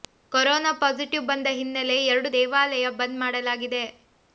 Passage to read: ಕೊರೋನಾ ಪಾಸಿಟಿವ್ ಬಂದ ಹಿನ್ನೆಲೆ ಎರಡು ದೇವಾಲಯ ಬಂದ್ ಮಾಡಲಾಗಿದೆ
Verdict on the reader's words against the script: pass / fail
pass